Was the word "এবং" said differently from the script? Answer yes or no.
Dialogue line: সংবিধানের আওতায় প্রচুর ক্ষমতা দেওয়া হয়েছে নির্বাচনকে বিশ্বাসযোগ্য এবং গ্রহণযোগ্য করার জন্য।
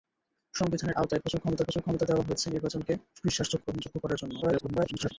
yes